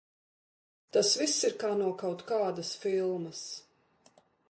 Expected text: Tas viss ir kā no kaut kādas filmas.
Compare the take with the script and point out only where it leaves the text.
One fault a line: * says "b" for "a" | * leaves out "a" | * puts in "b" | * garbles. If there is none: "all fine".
all fine